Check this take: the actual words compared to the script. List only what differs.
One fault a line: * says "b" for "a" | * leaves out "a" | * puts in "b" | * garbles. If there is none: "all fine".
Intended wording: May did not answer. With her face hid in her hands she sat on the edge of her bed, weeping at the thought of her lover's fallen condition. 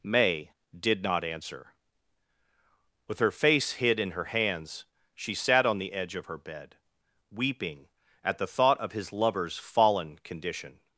* says "his" for "her"